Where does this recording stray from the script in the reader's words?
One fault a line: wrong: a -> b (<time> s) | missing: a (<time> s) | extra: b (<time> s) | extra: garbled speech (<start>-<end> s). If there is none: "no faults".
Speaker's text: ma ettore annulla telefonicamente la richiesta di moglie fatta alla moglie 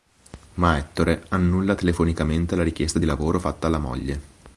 wrong: moglie -> lavoro (3.1 s)